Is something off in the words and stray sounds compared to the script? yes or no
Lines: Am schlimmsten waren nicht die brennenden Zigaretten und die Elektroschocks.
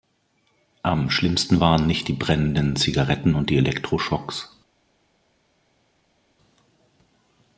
no